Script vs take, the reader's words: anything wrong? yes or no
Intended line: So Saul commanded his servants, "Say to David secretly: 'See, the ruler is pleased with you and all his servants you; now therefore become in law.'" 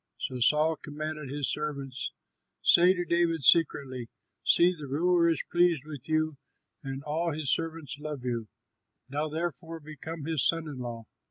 yes